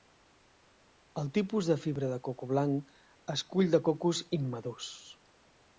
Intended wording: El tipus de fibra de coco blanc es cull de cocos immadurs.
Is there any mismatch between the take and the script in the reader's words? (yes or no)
no